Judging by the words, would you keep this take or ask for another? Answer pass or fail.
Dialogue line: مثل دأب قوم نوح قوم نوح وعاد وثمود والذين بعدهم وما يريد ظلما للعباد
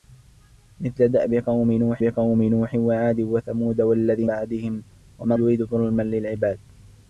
pass